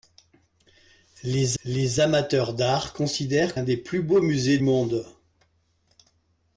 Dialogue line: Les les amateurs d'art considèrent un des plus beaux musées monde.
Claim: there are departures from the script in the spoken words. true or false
false